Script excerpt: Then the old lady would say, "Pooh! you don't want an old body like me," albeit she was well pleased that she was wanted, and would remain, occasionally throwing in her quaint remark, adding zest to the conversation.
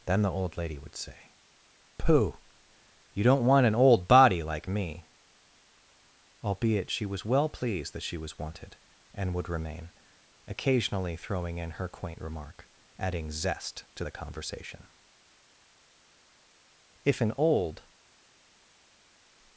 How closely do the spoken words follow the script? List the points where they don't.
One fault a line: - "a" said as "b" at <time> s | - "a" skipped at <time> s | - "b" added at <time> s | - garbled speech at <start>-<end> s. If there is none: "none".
- "If an old" added at 17.0 s